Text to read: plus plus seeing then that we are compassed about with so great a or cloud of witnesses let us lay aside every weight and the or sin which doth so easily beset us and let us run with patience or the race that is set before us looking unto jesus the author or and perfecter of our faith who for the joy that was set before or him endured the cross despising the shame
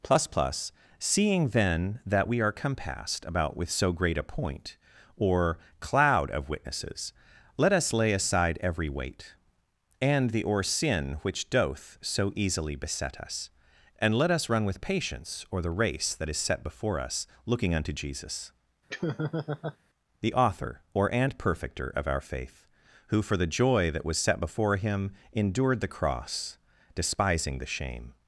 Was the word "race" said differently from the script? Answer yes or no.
no